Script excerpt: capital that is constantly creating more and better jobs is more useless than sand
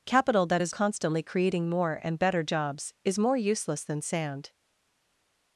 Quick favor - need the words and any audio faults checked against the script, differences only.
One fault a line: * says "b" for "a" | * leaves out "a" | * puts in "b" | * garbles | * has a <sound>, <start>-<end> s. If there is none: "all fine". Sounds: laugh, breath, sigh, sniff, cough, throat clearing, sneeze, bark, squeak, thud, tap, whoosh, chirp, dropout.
all fine